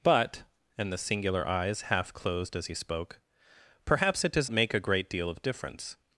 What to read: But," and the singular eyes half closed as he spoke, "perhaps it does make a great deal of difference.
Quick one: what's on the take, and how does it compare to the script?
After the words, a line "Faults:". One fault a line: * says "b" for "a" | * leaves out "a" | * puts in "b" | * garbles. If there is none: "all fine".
But," and the singular eyes half closed as he spoke, "perhaps it does make a great deal of difference.
Faults:
all fine